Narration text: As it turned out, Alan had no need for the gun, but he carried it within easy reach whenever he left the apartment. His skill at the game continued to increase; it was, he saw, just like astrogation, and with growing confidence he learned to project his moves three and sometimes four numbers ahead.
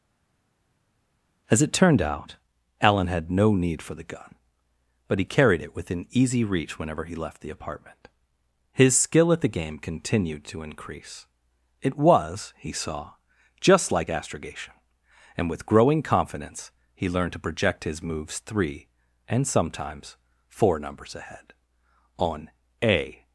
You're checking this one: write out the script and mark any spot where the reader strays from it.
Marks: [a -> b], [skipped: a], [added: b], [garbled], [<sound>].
As it turned out, Alan had no need for the gun, but he carried it within easy reach whenever he left the apartment. His skill at the game continued to increase; it was, he saw, just like astrogation, and with growing confidence he learned to project his moves three and sometimes four numbers ahead. [added: On a]